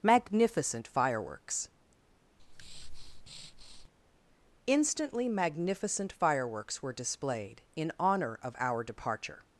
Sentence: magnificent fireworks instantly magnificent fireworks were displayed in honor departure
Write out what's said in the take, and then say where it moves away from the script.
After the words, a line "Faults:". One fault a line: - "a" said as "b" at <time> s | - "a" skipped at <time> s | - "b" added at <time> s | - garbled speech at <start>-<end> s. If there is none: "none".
magnificent fireworks instantly magnificent fireworks were displayed in honor of our departure
Faults:
- "of our" added at 8.4 s